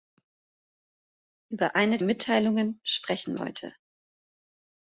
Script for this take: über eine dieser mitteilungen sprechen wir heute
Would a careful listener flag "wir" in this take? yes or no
yes